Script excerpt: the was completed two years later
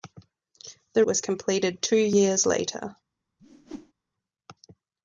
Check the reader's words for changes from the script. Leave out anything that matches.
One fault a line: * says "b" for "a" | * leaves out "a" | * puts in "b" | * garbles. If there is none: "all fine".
all fine